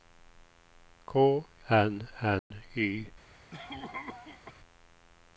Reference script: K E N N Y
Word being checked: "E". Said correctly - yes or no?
no